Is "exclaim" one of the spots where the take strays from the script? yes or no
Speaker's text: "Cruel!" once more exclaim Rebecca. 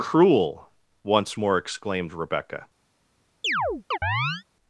yes